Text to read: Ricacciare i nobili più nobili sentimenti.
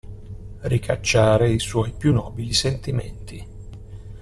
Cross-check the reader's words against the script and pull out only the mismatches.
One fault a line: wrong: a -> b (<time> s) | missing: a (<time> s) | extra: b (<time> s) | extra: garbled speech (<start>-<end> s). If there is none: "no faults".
wrong: nobili -> suoi (1.6 s)